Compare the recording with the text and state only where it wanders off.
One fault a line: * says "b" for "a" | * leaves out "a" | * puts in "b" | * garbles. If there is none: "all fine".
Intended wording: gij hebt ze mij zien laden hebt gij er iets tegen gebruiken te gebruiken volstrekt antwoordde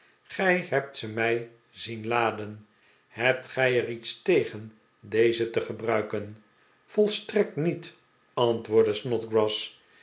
* says "deze" for "gebruiken"
* puts in "niet"